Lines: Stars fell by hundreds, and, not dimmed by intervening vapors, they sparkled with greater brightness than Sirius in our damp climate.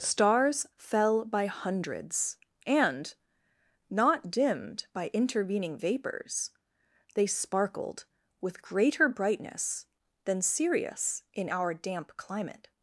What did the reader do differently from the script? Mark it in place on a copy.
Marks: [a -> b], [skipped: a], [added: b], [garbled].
Stars fell by hundreds, and, not dimmed by intervening vapors, they sparkled with greater brightness than Sirius in our damp climate.